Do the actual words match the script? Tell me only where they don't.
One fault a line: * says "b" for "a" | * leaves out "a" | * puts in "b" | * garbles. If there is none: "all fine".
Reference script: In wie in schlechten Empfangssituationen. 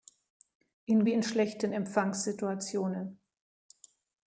all fine